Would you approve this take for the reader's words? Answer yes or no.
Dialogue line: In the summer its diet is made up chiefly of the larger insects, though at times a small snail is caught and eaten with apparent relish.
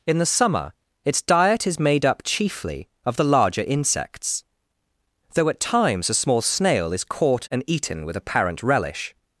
yes